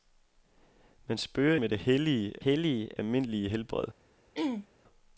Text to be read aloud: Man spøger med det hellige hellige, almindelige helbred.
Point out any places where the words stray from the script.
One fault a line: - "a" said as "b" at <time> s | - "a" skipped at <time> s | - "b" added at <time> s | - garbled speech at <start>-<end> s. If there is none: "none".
none